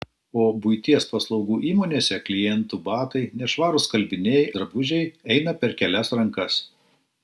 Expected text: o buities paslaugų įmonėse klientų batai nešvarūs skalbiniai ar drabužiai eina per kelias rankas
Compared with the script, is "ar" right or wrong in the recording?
wrong